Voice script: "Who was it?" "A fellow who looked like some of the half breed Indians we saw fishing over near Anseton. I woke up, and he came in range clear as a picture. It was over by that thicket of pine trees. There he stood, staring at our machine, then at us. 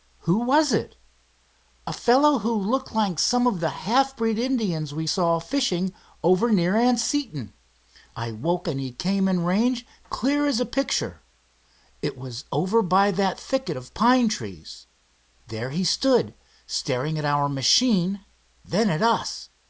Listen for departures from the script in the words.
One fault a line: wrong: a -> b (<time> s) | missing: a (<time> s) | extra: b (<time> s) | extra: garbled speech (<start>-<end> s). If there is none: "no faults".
missing: up (8.7 s)